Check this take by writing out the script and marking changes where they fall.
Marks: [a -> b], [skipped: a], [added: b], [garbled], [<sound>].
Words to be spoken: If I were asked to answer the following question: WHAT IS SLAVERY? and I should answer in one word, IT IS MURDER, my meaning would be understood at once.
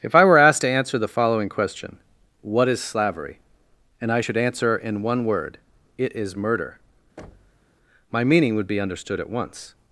If I were asked to answer the following question: WHAT IS SLAVERY? and I should answer in one word, IT IS MURDER, [thud] my meaning would be understood at once.